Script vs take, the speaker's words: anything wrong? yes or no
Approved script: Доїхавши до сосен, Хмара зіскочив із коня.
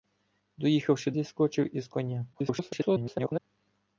yes